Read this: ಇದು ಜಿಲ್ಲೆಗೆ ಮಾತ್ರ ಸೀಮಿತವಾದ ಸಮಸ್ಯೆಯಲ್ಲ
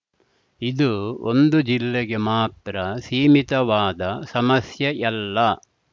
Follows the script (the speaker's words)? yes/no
no